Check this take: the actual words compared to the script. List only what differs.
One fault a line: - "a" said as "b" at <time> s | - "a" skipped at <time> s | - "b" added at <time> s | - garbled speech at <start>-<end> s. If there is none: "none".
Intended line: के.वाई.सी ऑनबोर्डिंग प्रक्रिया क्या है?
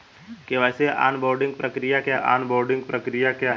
- "ऑनबोर्डिंग प्रक्रिया क्या" added at 2.1 s